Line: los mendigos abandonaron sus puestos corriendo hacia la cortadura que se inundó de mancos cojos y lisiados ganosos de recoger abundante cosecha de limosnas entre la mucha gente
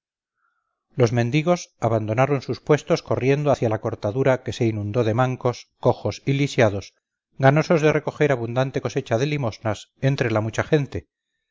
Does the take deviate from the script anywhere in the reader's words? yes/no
no